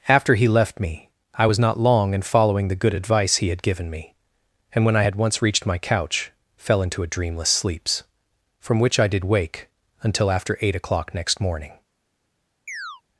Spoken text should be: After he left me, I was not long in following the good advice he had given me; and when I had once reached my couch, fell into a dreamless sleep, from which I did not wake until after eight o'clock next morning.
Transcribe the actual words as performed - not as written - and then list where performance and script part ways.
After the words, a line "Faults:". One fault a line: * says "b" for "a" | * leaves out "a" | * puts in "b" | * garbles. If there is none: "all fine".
After he left me, I was not long in following the good advice he had given me; and when I had once reached my couch, fell into a dreamless sleeps, from which I did wake until after eight o'clock next morning.
Faults:
* says "sleeps" for "sleep"
* leaves out "not"